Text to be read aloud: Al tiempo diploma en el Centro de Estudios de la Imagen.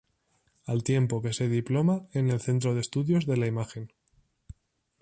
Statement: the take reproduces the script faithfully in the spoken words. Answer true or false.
false